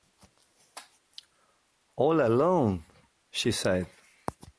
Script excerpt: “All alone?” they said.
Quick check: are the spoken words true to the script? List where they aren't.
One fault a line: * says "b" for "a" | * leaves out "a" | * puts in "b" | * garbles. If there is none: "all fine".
* says "she" for "they"